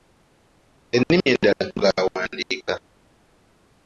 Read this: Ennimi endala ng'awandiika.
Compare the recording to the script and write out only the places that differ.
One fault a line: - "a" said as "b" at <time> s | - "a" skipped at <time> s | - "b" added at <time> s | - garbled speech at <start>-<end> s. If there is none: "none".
none